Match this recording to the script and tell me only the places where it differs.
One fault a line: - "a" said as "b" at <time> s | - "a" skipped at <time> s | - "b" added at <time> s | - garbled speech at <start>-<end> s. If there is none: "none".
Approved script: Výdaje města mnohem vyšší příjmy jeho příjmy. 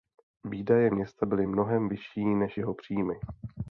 - "byly" added at 1.2 s
- "příjmy" said as "než" at 2.2 s